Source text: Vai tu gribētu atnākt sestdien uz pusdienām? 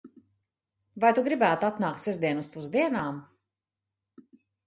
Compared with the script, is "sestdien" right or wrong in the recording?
right